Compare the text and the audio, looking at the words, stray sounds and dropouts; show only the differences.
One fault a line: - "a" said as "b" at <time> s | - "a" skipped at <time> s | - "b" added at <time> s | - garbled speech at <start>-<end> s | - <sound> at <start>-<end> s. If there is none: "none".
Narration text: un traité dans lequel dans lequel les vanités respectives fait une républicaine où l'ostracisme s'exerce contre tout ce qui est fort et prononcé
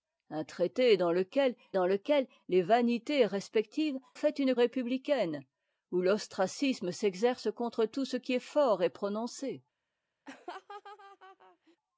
- laugh at 10.3-11.8 s